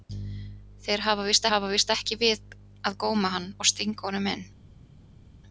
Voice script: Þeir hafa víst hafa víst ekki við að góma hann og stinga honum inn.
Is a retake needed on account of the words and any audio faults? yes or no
no